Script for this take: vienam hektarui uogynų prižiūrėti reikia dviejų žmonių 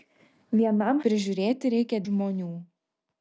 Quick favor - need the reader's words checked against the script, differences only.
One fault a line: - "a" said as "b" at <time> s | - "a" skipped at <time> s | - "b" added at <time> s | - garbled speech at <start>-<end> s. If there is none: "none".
- "hektarui uogynų" skipped at 1.0 s
- "dviejų" skipped at 2.0 s